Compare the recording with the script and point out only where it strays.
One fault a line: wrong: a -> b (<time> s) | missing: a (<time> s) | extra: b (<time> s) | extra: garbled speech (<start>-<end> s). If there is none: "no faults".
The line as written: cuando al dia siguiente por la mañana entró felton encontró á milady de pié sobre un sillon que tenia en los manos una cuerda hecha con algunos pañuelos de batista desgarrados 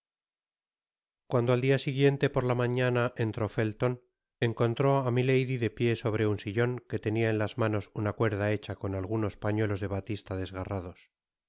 wrong: los -> las (7.4 s)